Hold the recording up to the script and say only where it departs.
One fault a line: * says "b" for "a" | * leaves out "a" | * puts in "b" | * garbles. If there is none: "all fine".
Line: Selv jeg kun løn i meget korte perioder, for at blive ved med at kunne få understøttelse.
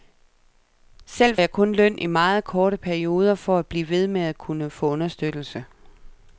all fine